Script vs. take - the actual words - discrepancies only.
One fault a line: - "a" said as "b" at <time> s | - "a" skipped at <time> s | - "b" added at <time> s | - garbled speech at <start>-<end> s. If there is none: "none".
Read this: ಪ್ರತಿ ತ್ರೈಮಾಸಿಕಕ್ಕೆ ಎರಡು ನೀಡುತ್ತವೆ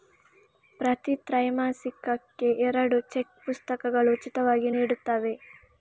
- "ಚೆಕ್ ಪುಸ್ತಕಗಳು ಉಚಿತವಾಗಿ" added at 3.1 s